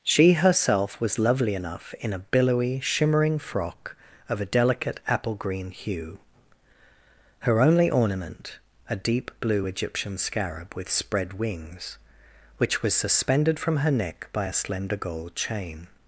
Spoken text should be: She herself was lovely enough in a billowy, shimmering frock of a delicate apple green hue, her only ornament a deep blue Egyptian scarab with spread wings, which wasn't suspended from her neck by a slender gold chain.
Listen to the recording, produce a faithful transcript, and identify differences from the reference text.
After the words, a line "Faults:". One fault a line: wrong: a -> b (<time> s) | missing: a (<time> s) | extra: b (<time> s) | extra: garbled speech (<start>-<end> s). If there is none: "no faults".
She herself was lovely enough in a billowy, shimmering frock of a delicate apple green hue, her only ornament a deep blue Egyptian scarab with spread wings, which was suspended from her neck by a slender gold chain.
Faults:
wrong: wasn't -> was (12.8 s)